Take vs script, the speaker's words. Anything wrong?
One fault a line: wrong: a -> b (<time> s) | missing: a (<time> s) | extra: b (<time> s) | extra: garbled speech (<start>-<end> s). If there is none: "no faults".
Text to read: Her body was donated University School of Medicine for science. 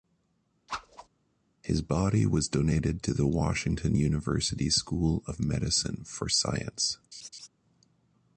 wrong: Her -> His (1.6 s)
extra: to the Washington (3.0 s)